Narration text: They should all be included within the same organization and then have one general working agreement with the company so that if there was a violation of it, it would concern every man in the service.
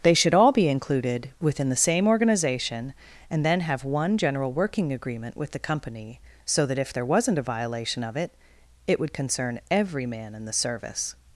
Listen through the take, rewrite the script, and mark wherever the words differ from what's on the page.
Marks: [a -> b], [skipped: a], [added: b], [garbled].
They should all be included within the same organization and then have one general working agreement with the company so that if there [was -> wasn't] a violation of it, it would concern every man in the service.